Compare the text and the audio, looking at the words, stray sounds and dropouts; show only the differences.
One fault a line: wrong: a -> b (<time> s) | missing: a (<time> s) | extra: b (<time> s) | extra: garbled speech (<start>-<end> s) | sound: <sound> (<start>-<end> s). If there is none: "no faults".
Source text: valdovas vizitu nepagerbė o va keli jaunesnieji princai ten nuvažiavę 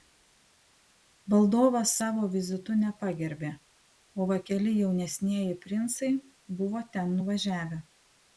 extra: savo (2.0 s)
extra: buvo (6.6 s)